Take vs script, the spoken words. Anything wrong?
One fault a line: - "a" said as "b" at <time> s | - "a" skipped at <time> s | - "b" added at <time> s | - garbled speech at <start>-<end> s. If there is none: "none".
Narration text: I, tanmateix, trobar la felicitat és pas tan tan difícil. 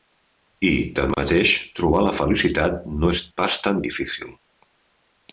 - "no" added at 3.0 s
- "tan" skipped at 3.8 s